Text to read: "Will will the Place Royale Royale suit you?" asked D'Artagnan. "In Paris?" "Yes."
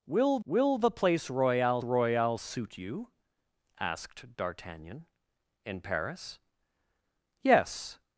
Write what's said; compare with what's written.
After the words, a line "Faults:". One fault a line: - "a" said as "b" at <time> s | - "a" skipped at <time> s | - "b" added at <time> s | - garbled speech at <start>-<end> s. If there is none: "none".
"Will will the Place Royale Royale suit you?" asked D'Artagnan. "In Paris?" "Yes."
Faults:
none